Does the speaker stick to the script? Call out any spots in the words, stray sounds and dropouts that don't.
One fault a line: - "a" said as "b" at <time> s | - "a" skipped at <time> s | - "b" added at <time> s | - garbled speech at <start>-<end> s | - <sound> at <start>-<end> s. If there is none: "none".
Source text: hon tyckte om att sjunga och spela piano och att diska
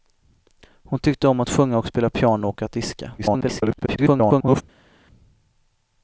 - garbled speech at 3.2-4.6 s